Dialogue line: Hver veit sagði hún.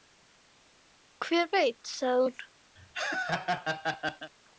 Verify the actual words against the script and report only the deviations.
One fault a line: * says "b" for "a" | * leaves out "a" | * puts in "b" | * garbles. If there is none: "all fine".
all fine